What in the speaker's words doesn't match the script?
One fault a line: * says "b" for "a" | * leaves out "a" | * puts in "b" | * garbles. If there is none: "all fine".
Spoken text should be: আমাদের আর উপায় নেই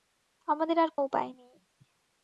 all fine